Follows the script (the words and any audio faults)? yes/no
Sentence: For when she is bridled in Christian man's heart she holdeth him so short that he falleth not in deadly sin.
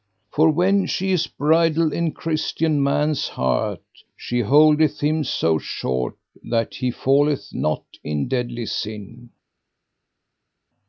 yes